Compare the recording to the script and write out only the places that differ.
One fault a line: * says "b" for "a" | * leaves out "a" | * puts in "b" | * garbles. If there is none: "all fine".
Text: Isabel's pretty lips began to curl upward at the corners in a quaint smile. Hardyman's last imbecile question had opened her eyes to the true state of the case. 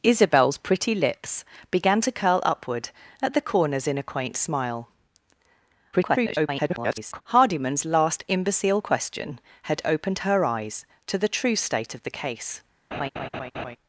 * garbles